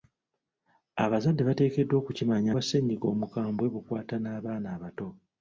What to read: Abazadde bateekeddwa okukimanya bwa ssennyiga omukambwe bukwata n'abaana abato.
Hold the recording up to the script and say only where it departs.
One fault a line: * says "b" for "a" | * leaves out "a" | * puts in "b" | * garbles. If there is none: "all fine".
all fine